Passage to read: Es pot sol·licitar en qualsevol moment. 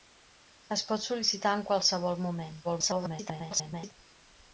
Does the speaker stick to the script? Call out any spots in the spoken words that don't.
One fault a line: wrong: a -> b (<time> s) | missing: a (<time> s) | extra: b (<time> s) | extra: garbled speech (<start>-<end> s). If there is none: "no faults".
extra: garbled speech (2.6-3.9 s)